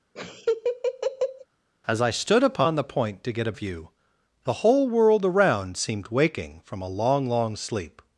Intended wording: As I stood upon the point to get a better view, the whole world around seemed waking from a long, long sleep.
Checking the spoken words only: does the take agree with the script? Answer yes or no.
no